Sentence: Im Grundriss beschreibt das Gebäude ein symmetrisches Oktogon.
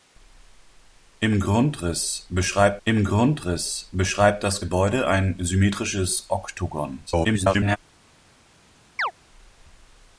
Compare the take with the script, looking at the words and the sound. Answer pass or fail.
fail